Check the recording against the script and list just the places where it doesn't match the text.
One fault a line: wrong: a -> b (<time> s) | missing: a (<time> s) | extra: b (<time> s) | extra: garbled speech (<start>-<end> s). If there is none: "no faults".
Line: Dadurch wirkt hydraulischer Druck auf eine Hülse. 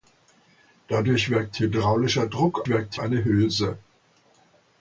wrong: auf -> wirkt (2.7 s)